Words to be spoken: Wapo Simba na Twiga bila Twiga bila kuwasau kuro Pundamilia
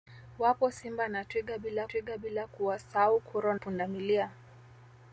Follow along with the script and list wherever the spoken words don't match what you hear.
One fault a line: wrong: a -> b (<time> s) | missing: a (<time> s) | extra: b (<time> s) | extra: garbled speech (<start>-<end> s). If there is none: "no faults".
no faults